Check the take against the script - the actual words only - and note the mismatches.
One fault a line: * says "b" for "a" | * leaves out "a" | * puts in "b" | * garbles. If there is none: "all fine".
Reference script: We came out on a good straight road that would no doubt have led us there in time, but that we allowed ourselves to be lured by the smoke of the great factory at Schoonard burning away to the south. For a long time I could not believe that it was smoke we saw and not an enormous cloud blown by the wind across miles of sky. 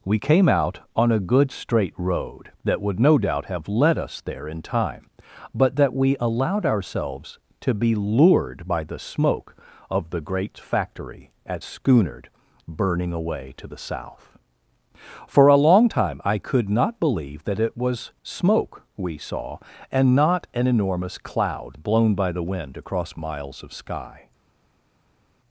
all fine